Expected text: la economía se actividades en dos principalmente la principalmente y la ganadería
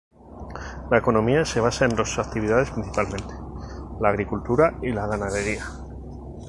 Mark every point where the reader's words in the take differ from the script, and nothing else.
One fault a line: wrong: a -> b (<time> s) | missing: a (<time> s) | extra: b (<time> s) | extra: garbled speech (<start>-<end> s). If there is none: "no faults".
wrong: actividades -> basa (1.6 s)
extra: actividades (2.2 s)
wrong: principalmente -> agricultura (4.1 s)